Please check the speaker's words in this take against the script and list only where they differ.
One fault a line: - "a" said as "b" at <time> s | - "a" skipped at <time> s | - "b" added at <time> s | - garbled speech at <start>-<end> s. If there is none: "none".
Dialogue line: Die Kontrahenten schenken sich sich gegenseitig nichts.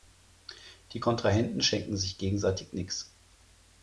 - "sich" skipped at 2.2 s